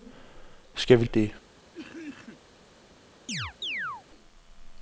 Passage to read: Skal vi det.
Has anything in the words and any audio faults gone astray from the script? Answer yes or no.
yes